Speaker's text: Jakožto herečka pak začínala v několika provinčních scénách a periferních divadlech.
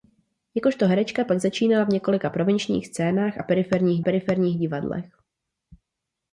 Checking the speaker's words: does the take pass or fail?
fail